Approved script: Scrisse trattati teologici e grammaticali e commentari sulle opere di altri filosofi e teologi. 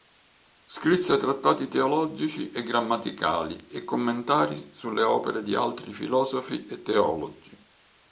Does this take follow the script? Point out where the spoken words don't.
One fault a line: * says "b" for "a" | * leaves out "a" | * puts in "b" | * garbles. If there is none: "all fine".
all fine